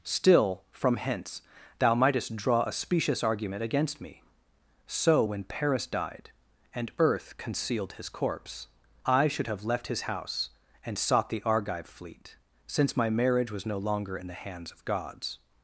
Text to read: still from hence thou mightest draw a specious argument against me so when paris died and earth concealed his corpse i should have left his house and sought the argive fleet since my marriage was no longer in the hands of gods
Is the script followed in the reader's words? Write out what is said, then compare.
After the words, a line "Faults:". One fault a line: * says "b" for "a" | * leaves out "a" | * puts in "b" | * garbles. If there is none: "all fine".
still from hence thou mightest draw a specious argument against me so when paris died and earth concealed his corpse i should have left his house and sought the argive fleet since my marriage was no longer in the hands of gods
Faults:
all fine